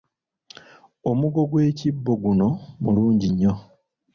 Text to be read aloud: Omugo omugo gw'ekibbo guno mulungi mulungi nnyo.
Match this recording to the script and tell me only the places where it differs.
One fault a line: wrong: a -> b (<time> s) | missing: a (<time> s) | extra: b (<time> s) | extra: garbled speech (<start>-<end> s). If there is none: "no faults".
missing: omugo (1.4 s)
missing: mulungi (3.3 s)